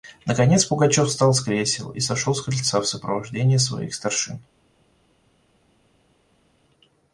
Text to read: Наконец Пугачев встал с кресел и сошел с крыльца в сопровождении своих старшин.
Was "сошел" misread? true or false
false